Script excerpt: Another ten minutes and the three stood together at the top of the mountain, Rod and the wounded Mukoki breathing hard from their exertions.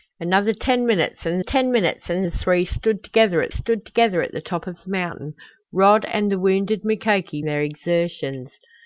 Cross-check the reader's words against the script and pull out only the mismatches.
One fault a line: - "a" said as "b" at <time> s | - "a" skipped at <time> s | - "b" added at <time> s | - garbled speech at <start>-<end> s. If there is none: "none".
- "ten minutes and" added at 1.4 s
- "stood together at" added at 3.5 s
- "breathing hard from" skipped at 7.4 s